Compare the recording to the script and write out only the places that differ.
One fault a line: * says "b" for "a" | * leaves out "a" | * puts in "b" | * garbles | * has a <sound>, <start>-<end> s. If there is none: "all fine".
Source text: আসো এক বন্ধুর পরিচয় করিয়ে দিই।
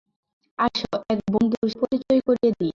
all fine